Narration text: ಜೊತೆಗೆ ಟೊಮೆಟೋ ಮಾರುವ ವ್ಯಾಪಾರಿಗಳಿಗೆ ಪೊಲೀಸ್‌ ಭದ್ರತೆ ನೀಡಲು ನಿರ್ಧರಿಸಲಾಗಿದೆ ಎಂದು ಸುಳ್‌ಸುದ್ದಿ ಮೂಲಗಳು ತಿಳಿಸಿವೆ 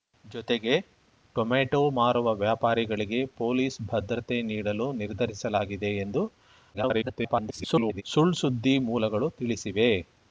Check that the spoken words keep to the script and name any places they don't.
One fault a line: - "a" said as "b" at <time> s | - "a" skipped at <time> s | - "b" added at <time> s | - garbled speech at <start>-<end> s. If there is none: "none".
- garbled speech at 6.7-8.0 s